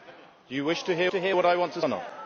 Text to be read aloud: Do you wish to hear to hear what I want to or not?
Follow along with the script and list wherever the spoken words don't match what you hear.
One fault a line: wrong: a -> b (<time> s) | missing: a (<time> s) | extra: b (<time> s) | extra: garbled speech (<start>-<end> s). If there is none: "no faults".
no faults